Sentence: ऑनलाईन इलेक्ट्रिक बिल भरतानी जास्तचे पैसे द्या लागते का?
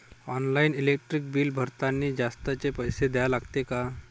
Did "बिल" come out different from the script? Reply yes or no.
no